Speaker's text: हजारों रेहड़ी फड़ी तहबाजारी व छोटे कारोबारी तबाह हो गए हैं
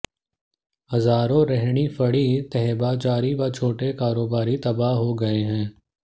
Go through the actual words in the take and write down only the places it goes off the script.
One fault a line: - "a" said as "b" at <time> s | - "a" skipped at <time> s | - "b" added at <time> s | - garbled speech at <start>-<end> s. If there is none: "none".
none